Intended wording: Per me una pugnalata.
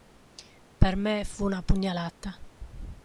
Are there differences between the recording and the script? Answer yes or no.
yes